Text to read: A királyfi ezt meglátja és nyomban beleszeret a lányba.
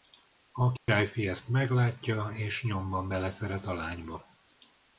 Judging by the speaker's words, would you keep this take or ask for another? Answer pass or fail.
pass